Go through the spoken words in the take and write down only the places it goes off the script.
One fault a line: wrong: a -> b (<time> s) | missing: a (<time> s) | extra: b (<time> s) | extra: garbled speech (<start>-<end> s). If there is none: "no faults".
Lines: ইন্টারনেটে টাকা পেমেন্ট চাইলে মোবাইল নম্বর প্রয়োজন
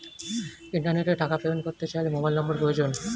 extra: করতে (1.7 s)